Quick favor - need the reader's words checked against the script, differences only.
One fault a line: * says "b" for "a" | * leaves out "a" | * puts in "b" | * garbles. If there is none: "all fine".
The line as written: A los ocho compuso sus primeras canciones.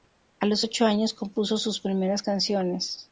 * puts in "años"